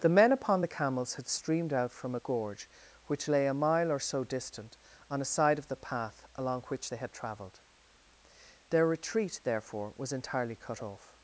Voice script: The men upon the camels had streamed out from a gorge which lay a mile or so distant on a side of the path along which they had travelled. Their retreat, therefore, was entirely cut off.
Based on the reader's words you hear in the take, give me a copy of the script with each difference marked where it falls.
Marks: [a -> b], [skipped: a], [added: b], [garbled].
The men upon the camels had streamed out from a gorge which lay a mile or so distant on a side of the path along which they had travelled. Their retreat, therefore, was entirely cut off.